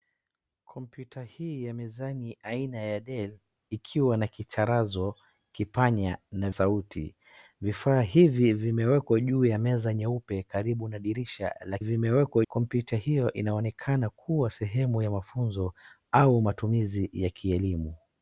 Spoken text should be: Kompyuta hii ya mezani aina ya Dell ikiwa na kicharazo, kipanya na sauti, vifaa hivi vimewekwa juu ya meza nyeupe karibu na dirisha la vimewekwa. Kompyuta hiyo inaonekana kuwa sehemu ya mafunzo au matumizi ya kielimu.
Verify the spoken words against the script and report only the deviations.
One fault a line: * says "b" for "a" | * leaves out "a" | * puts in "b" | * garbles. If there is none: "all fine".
all fine